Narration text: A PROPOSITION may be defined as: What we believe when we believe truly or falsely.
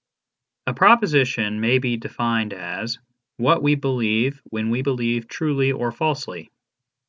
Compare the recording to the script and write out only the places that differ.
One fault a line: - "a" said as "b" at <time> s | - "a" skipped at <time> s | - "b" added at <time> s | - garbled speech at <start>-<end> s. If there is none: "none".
none